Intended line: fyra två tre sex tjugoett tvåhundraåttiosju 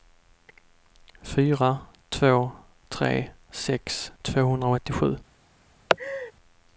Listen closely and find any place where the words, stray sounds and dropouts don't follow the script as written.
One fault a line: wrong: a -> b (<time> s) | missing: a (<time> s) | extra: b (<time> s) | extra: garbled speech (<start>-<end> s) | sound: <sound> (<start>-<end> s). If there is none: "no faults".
missing: tjugoett (4.1 s)
sound: laugh (5.9-6.3 s)